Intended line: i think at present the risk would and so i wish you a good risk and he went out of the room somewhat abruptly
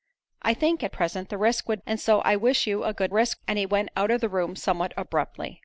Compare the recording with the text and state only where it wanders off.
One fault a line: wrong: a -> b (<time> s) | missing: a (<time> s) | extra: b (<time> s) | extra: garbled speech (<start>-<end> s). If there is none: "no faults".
no faults